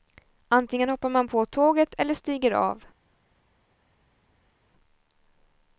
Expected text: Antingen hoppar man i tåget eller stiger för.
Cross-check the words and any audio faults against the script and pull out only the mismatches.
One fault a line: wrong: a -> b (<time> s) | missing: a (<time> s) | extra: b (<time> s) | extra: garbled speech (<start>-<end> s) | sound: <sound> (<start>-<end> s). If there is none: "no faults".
wrong: i -> på (1.2 s)
wrong: för -> av (2.5 s)